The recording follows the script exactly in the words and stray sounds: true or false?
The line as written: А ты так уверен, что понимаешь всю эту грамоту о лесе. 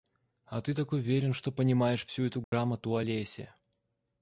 false